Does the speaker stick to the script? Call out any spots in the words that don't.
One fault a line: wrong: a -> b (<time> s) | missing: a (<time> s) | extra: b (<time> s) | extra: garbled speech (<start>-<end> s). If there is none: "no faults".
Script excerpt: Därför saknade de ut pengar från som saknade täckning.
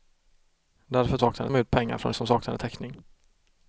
no faults